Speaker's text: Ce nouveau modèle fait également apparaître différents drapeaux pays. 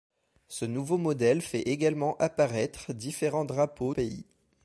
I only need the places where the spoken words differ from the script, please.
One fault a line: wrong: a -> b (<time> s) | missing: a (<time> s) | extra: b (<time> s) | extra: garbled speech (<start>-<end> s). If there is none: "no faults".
no faults